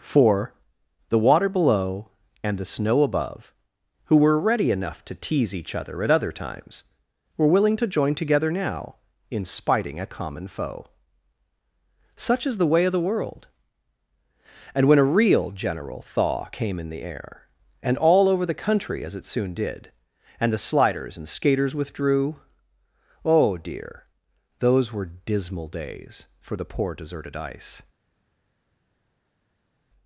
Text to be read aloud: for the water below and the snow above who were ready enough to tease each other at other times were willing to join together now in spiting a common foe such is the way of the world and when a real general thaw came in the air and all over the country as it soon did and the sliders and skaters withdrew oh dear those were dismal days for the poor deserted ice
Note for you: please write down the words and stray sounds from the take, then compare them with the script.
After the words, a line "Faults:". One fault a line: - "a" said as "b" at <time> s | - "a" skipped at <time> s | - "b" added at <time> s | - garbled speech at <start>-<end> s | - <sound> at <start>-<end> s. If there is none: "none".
for the water below and the snow above who were ready enough to tease each other at other times were willing to join together now in spiting a common foe such is the way of the world and when a real general thaw came in the air and all over the country as it soon did and the sliders and skaters withdrew oh dear those were dismal days for the poor deserted ice
Faults:
none